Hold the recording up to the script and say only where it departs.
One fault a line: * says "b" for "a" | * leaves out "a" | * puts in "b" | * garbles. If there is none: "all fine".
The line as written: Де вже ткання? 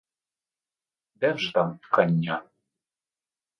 * puts in "там"